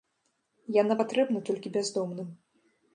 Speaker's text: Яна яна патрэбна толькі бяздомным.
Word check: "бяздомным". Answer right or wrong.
right